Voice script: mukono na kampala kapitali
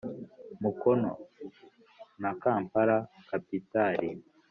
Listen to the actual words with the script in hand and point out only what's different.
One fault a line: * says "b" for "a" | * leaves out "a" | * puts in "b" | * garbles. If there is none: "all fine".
all fine